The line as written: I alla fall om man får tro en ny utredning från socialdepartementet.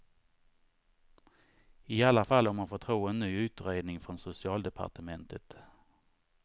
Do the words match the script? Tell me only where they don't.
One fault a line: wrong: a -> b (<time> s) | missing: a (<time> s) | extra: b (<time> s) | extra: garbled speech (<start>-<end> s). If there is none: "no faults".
no faults